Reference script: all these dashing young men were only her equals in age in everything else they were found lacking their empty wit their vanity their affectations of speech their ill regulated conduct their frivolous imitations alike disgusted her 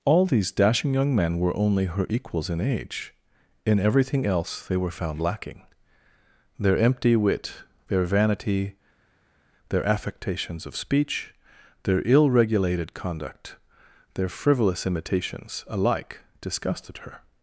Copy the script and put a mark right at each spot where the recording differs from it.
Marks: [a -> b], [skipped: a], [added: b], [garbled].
all these dashing young men were only her equals in age in everything else they were found lacking their empty wit their vanity their affectations of speech their ill regulated conduct their frivolous imitations alike disgusted her